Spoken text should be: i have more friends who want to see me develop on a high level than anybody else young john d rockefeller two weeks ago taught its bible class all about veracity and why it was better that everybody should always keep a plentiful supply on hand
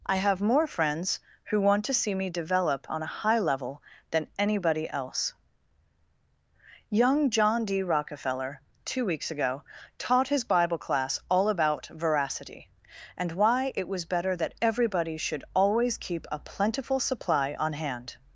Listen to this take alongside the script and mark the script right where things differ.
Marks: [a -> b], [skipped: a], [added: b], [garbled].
i have more friends who want to see me develop on a high level than anybody else young john d rockefeller two weeks ago taught [its -> his] bible class all about veracity and why it was better that everybody should always keep a plentiful supply on hand